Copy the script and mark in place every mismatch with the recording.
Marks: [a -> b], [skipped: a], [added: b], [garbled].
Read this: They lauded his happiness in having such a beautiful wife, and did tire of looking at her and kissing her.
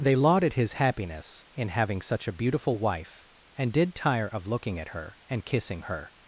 They lauded his happiness in having such a beautiful wife, and did tire of looking at her and kissing her.